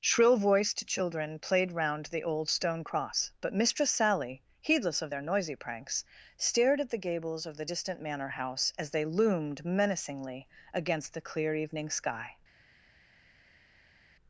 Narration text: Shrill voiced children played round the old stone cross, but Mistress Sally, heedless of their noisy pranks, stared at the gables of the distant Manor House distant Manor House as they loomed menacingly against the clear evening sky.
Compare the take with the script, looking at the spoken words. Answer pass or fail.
fail